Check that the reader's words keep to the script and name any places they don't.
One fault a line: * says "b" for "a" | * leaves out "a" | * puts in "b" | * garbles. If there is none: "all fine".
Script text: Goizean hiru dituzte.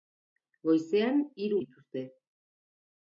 all fine